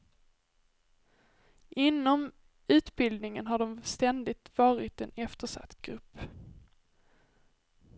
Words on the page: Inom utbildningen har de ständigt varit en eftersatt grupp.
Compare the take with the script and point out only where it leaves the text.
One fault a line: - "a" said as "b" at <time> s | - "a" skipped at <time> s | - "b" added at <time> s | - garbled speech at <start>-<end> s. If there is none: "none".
none